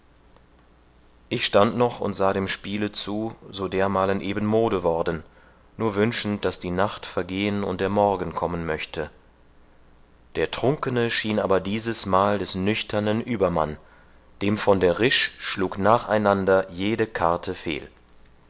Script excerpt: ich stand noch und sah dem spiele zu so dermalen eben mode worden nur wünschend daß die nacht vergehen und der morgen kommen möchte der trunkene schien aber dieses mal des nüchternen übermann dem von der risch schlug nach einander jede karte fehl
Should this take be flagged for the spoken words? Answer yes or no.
no